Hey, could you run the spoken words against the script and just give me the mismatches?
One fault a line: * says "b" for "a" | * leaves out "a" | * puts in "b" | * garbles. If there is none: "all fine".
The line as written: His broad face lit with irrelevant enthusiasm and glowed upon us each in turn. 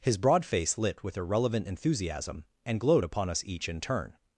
all fine